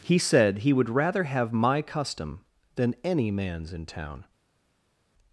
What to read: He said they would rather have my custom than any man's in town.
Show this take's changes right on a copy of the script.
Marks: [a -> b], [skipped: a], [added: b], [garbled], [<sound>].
He said [they -> he] would rather have my custom than any man's in town.